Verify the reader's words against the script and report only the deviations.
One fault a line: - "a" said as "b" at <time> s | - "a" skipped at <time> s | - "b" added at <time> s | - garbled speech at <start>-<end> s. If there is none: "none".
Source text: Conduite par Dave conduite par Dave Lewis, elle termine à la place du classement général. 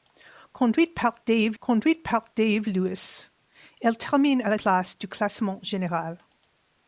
none